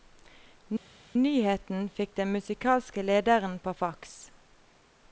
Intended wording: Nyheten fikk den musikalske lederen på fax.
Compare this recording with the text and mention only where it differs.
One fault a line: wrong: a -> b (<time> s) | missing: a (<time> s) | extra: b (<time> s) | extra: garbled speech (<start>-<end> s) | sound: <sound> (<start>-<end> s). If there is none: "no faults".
no faults